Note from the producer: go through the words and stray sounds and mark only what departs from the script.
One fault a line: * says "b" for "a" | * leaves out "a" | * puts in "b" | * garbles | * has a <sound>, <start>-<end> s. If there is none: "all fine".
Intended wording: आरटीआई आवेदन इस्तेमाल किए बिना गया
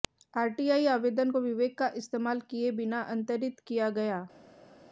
* puts in "को विवेक का"
* puts in "अंतरित किया"